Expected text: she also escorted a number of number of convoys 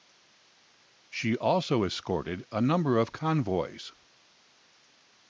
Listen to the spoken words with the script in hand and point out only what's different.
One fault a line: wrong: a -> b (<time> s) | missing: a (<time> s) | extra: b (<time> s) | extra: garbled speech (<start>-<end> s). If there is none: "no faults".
missing: number of (3.1 s)